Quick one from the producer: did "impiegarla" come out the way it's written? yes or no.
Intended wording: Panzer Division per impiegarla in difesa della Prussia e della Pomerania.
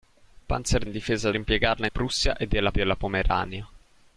no